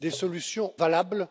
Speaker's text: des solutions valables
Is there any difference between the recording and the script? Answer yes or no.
no